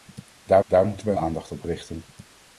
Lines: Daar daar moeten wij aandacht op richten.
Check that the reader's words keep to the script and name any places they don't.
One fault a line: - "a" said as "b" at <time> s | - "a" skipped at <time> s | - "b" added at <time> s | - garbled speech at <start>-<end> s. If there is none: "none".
none